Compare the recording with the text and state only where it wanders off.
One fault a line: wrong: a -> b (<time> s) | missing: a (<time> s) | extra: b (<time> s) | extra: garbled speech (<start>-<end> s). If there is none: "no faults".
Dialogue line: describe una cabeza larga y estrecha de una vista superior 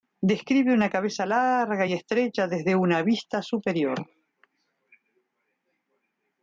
wrong: de -> desde (2.5 s)